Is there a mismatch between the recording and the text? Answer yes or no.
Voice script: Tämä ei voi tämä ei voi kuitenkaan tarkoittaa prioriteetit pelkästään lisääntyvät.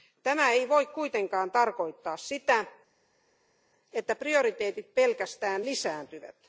yes